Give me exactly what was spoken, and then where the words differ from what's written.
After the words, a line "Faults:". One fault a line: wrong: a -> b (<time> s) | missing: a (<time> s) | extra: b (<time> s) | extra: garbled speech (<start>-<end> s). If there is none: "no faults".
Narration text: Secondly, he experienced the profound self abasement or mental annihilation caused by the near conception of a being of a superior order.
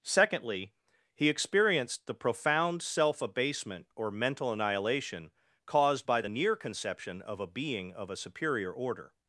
Secondly, he experienced the profound self abasement or mental annihilation caused by the near conception of a being of a superior order.
Faults:
no faults